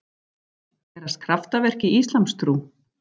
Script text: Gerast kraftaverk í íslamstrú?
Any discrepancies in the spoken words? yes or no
no